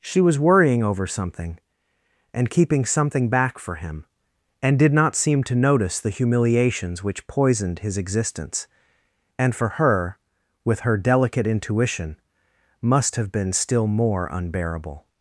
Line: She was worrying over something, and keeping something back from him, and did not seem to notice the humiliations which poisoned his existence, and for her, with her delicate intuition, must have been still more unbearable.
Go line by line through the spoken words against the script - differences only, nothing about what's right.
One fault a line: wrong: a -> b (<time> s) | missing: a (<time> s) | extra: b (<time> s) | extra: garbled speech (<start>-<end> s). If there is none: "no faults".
wrong: from -> for (3.6 s)